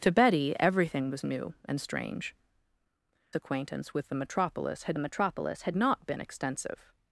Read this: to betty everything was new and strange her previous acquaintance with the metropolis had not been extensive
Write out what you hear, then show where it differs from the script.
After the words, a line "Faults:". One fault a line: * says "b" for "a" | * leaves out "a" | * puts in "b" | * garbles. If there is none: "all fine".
to betty everything was new and strange acquaintance with the metropolis had metropolis had not been extensive
Faults:
* leaves out "her previous"
* puts in "metropolis had"